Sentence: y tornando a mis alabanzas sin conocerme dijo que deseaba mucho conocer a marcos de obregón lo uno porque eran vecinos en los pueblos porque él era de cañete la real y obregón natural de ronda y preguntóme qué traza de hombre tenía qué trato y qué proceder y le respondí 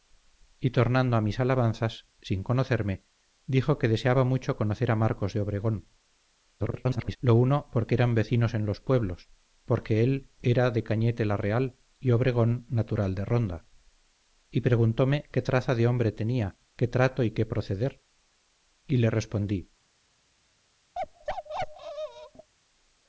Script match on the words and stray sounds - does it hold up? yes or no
no